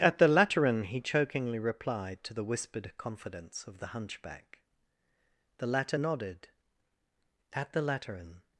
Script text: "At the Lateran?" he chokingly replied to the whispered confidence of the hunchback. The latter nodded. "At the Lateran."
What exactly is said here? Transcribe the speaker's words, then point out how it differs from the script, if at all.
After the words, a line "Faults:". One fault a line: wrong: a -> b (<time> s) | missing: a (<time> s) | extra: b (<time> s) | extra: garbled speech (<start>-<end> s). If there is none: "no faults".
"At the Lateran?" he chokingly replied to the whispered confidence of the hunchback. The latter nodded. "At the Lateran."
Faults:
no faults